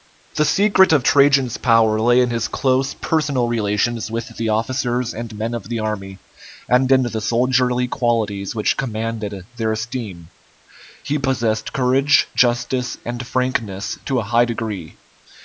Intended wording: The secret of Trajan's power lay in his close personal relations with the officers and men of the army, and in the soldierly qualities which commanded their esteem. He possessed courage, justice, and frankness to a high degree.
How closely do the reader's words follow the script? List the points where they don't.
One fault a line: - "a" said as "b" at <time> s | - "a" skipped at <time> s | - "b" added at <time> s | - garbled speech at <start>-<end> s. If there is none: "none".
none